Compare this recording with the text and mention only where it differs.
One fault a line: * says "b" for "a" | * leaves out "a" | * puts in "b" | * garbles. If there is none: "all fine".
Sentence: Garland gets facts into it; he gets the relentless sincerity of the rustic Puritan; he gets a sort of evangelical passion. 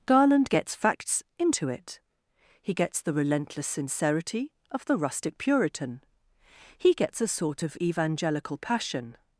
all fine